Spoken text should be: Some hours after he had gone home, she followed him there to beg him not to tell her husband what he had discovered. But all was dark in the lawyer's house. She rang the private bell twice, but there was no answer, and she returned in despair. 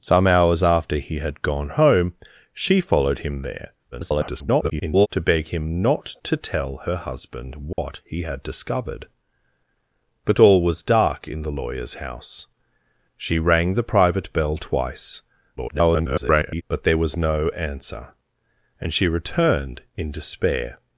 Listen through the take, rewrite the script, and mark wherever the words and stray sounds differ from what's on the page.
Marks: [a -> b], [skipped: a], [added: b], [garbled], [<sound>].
Some hours after he had gone home, she followed him there [garbled] to beg him not to tell her husband what [dropout] he had discovered. But all was dark in the lawyer's house. She rang the private bell twice, [garbled] but there was no answer, and she returned in despair.